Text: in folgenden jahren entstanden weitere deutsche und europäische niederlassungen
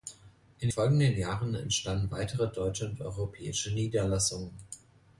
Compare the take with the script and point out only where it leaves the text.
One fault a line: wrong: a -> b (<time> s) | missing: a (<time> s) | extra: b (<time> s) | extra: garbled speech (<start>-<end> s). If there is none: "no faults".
no faults